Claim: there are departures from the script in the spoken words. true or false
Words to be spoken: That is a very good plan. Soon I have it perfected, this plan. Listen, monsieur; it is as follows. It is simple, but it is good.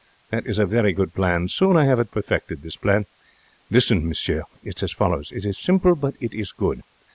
false